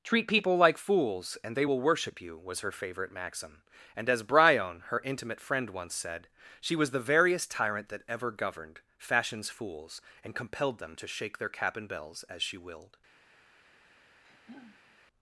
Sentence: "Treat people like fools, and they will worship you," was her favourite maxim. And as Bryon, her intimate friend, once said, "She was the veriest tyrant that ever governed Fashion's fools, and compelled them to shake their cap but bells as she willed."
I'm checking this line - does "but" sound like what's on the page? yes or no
no